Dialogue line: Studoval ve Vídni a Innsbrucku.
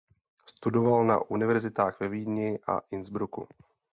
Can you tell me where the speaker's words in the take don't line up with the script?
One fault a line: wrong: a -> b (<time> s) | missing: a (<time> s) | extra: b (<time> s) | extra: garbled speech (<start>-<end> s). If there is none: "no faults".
extra: na univerzitách (1.1 s)